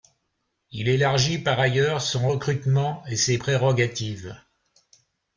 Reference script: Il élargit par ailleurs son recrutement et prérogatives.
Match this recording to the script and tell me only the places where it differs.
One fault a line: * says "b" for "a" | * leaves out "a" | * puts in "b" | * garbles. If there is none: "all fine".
* puts in "ses"